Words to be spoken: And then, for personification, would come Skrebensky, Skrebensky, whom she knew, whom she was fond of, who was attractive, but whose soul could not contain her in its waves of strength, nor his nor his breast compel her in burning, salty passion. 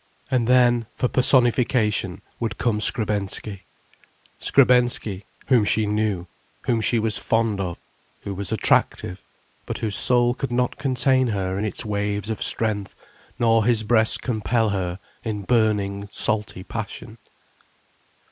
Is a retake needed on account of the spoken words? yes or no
yes